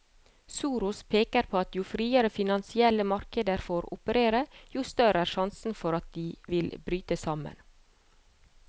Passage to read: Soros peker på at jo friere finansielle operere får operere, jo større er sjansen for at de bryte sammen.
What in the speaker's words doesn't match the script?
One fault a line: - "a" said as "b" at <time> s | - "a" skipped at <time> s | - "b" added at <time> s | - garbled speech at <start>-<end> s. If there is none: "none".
- "operere" said as "markeder" at 3.1 s
- "vil" added at 6.6 s